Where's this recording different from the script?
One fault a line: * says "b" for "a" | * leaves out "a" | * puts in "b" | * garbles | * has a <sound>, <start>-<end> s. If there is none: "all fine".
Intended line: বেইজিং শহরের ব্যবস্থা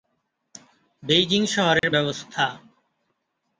* has a dropout, 1.8-1.8 s